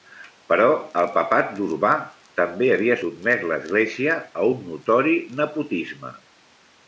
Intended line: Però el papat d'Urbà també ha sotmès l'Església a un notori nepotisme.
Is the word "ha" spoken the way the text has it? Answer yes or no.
no